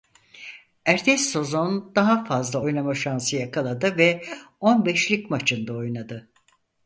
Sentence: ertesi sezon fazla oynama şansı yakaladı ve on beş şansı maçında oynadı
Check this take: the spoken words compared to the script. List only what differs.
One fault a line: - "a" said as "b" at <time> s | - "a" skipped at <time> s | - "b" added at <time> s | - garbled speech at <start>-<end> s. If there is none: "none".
- "daha" added at 1.9 s
- "şansı" said as "lig" at 5.1 s